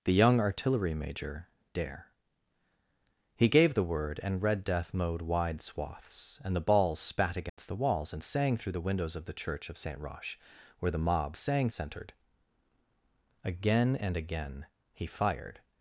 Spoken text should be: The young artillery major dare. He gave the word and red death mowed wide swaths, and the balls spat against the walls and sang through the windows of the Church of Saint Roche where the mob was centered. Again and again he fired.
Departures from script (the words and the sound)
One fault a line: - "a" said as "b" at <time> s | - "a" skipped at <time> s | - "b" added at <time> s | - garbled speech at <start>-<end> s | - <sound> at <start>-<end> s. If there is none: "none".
- dropout at 7.5-7.6 s
- "was" said as "sang" at 11.4 s